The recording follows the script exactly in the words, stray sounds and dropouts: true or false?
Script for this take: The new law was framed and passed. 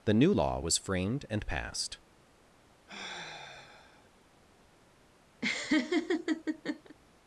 false